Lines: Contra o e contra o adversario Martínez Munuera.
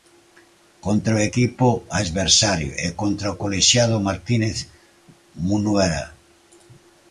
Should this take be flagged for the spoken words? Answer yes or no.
yes